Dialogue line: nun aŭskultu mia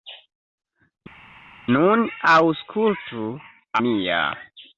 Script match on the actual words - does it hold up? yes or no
yes